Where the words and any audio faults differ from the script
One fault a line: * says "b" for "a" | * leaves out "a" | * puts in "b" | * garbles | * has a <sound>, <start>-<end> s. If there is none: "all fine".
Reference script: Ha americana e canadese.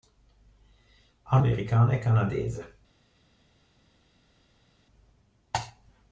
all fine